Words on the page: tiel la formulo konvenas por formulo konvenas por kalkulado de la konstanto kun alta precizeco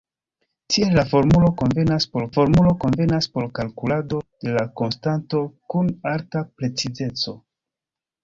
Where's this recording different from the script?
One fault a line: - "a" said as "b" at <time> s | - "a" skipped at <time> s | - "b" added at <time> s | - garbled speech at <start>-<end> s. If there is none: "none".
none